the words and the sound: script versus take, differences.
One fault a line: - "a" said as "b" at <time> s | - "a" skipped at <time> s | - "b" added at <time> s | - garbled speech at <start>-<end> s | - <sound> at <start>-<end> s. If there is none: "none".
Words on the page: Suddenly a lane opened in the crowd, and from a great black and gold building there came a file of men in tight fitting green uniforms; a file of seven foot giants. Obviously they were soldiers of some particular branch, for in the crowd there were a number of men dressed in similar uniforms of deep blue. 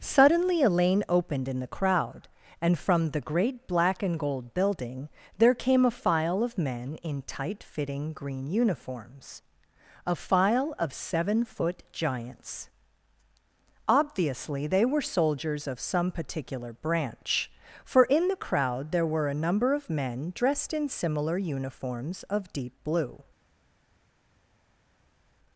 - "a" said as "the" at 3.1 s